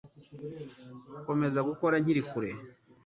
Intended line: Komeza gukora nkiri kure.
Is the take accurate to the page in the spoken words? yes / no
yes